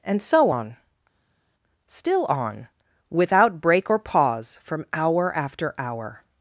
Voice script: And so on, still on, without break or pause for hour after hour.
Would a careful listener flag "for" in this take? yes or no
yes